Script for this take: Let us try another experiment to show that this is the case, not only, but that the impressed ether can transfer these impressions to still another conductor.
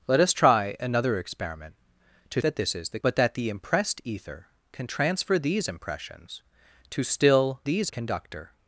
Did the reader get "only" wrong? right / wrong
wrong